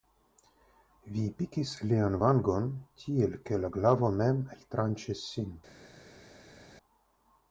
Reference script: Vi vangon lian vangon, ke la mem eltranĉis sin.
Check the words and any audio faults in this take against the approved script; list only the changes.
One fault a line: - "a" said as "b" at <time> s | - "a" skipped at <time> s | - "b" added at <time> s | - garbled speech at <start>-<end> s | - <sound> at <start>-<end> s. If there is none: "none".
- "vangon" said as "pikis" at 1.4 s
- "tiel" added at 3.0 s
- "glavo" added at 3.8 s